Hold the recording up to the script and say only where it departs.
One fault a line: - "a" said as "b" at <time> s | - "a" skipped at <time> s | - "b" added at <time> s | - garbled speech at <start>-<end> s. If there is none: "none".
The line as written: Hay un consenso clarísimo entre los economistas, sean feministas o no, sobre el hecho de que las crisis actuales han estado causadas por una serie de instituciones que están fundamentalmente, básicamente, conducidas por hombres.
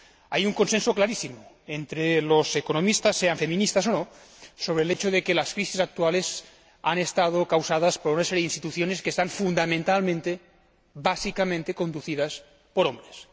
none